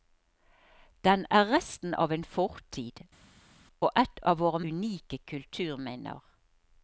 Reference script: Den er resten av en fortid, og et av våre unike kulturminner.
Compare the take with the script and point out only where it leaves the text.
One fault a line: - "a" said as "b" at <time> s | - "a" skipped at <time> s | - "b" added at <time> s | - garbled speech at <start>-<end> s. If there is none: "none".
none